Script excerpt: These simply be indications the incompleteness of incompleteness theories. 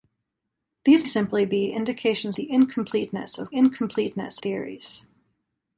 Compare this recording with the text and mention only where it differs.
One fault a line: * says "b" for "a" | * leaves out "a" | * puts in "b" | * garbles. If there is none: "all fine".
all fine